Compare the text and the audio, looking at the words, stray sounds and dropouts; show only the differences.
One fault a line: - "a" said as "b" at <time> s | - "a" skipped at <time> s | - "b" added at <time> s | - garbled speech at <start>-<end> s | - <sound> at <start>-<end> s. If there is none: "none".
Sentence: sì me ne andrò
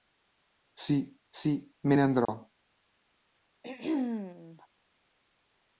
- "sì" added at 1.3 s
- dropout at 2.2-2.3 s
- throat clearing at 3.6-4.7 s